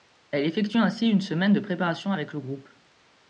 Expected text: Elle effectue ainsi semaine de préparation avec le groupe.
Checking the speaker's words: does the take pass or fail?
fail